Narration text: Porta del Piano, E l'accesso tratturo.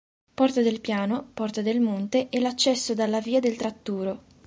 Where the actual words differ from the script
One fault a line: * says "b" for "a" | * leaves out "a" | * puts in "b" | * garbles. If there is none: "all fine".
* puts in "Porta del Monte"
* puts in "dalla via del"